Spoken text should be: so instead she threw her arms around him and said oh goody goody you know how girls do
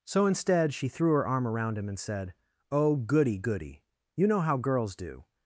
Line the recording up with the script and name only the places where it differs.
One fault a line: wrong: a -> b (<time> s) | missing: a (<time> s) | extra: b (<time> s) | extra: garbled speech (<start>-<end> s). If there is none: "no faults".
wrong: arms -> arm (1.3 s)